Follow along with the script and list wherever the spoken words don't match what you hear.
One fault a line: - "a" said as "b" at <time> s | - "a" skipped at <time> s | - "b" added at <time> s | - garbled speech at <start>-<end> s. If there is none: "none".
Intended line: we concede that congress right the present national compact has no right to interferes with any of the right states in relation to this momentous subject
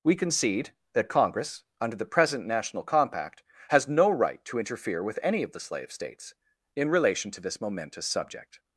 - "right" said as "under" at 1.8 s
- "interferes" said as "interfere" at 4.6 s
- "right" said as "slave" at 5.6 s